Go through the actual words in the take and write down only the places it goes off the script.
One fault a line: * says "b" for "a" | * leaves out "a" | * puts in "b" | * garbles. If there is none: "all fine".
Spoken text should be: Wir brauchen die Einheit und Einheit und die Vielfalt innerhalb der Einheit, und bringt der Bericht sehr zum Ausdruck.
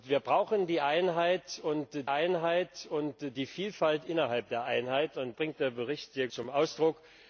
all fine